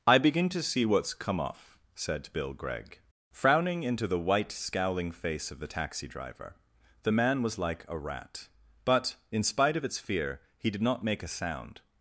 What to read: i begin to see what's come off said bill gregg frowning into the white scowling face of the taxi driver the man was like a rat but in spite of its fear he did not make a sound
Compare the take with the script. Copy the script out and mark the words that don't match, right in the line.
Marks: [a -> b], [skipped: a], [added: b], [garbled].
i begin to see what's come off said bill gregg frowning into the white scowling face of the taxi driver the man was like a rat but in spite of its fear he did not make a sound